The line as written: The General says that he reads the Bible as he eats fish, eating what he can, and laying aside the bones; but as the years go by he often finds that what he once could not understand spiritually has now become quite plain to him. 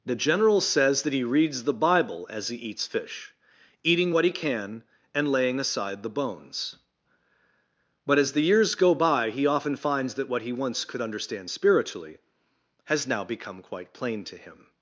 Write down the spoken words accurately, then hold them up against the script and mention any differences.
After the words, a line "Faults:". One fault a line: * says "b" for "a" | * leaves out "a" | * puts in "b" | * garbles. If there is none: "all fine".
The General says that he reads the Bible as he eats fish, eating what he can, and laying aside the bones; but as the years go by he often finds that what he once could understand spiritually has now become quite plain to him.
Faults:
* leaves out "not"